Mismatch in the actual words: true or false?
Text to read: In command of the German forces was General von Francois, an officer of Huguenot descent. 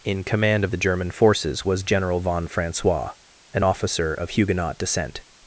false